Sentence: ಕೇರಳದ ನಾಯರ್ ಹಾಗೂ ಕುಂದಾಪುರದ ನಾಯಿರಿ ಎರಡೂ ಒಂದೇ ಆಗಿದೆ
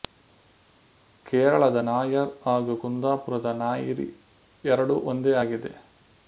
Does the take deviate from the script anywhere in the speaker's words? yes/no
no